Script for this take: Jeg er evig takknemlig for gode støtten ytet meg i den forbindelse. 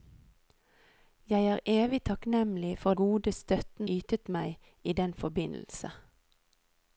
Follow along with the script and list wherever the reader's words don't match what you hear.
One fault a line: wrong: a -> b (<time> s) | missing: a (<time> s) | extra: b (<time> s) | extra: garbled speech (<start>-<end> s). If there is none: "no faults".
no faults